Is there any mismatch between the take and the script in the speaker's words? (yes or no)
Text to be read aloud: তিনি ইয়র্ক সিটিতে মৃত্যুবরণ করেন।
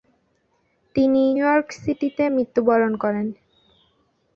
no